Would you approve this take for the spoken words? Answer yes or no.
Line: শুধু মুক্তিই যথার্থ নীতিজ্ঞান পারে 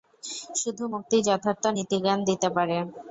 no